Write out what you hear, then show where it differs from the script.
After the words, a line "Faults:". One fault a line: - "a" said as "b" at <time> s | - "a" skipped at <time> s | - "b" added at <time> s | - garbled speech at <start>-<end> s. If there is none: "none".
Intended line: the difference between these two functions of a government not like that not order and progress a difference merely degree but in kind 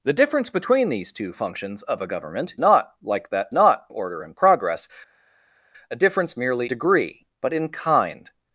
the difference between these two functions of a government not like that not order and progress a difference merely degree but in kind
Faults:
none